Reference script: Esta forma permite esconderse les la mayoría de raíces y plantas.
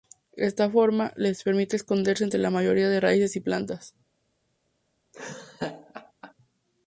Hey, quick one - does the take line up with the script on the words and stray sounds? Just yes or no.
no